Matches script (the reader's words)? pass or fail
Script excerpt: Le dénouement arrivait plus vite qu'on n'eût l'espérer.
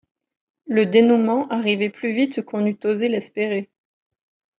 fail